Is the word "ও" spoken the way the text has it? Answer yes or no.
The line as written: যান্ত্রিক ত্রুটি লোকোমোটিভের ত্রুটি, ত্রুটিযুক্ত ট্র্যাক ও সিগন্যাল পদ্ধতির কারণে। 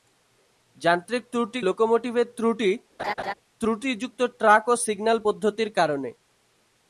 yes